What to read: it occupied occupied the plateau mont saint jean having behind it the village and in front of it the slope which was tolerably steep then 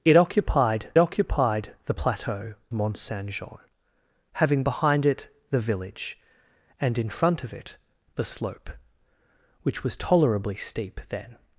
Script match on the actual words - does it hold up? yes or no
yes